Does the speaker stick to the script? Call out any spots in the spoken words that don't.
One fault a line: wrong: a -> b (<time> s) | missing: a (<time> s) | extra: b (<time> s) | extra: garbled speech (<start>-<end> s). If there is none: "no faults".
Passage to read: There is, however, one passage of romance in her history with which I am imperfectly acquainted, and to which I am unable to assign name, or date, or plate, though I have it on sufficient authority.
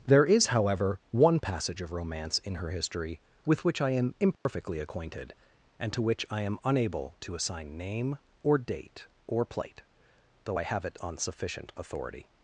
no faults